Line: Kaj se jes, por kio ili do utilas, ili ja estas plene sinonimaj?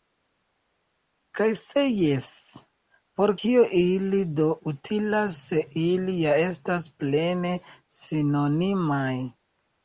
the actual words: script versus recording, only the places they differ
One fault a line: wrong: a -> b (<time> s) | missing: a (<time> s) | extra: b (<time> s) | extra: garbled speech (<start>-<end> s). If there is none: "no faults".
extra: se (5.5 s)